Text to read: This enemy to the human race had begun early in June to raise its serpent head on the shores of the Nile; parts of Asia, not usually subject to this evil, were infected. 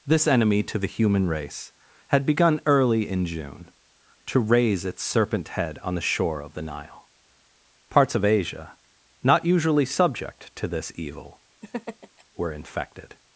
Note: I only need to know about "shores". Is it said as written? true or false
false